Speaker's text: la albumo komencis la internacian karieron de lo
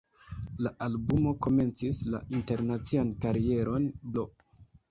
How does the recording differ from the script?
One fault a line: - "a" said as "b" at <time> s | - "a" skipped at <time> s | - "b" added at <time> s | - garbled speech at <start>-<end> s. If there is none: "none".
- "de" skipped at 3.9 s